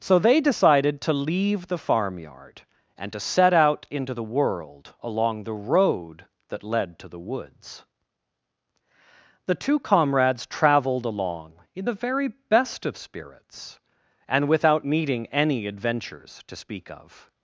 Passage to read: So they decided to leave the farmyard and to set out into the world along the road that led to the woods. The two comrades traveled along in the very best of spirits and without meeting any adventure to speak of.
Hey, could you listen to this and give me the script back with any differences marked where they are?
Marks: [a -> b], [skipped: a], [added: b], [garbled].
So they decided to leave the farmyard and to set out into the world along the road that led to the woods. The two comrades traveled along in the very best of spirits and without meeting any [adventure -> adventures] to speak of.